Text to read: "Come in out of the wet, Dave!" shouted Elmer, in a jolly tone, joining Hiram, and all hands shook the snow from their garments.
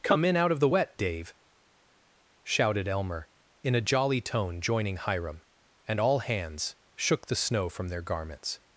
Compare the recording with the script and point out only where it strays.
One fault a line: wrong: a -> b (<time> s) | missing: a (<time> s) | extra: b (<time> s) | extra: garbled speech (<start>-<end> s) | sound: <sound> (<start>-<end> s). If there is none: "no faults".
no faults